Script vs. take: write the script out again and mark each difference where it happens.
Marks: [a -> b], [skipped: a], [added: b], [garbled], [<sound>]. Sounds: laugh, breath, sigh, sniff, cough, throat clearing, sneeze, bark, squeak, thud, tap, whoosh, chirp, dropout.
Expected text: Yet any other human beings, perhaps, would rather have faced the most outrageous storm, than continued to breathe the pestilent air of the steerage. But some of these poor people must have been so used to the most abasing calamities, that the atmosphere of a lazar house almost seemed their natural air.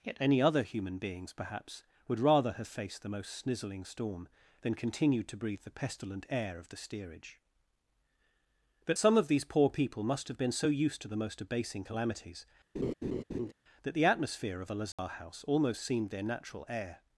Yet any other human beings, perhaps, would rather have faced the most [outrageous -> snizzling] storm, than continued to breathe the pestilent air of the steerage. But some of these poor people must have been so used to the most abasing calamities, [laugh] that the atmosphere of a lazar [dropout] house almost seemed their natural air.